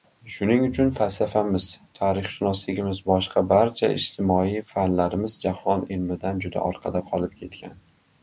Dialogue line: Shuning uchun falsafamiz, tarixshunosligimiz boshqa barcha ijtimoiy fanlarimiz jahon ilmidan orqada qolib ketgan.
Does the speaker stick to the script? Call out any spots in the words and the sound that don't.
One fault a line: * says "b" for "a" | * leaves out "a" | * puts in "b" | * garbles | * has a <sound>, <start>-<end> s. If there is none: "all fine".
* puts in "juda"